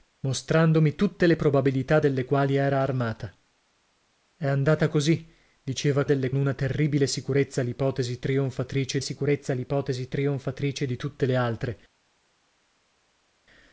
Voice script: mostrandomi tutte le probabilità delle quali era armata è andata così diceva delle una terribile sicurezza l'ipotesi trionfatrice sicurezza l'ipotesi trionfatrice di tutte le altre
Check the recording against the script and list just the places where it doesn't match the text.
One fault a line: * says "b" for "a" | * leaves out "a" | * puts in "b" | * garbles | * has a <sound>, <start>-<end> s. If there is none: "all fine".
all fine